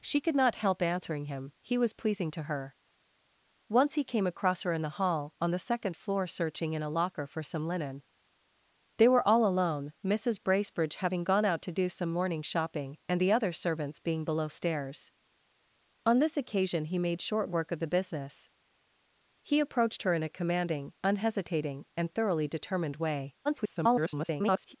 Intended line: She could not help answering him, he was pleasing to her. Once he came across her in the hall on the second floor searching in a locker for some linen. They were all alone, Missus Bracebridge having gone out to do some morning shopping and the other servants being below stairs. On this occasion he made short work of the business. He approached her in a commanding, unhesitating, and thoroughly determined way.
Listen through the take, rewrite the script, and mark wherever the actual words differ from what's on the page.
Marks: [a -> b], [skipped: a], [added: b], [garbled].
She could not help answering him, he was pleasing to her. Once he came across her in the hall on the second floor searching in a locker for some linen. They were all alone, Missus Bracebridge having gone out to do some morning shopping and the other servants being below stairs. On this occasion he made short work of the business. He approached her in a commanding, unhesitating, and thoroughly determined way. [garbled]